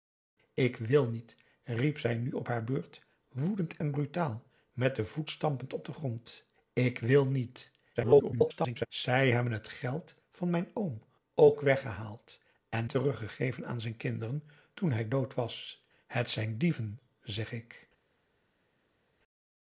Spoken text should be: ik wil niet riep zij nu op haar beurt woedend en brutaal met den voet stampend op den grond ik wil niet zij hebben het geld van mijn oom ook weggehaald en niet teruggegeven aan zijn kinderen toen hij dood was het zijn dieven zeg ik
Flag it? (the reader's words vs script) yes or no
yes